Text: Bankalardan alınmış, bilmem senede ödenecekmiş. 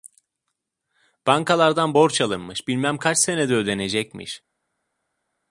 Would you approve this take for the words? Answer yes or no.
no